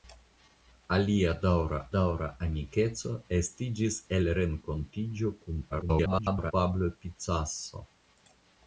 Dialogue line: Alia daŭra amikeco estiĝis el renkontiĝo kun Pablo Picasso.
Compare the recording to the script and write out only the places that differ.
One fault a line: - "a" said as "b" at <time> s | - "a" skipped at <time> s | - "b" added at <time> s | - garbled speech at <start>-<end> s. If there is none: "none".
- "daŭra" added at 1.9 s
- garbled speech at 5.7-6.5 s